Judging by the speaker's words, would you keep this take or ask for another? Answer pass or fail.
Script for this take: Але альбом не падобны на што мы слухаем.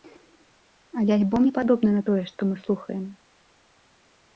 fail